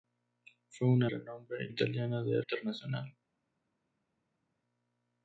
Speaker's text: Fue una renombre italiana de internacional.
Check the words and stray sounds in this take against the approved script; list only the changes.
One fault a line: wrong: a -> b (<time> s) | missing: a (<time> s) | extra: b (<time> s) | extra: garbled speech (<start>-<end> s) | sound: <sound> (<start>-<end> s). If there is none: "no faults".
no faults